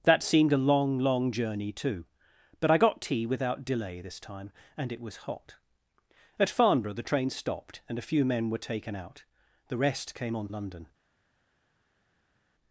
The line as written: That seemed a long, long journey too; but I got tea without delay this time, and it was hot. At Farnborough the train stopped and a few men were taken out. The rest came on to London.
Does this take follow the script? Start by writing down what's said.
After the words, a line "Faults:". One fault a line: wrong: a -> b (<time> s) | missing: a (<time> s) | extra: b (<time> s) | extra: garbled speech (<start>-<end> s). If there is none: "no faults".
That seemed a long, long journey too; but I got tea without delay this time, and it was hot. At Farnborough the train stopped and a few men were taken out. The rest came on London.
Faults:
missing: to (10.5 s)